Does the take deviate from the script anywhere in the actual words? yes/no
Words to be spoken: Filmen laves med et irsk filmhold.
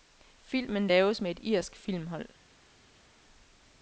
no